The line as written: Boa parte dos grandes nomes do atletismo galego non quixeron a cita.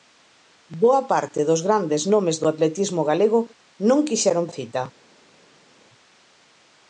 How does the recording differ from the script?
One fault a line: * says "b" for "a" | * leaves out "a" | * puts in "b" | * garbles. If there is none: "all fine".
all fine